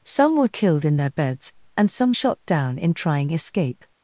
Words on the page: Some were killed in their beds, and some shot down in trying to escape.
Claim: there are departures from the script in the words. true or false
true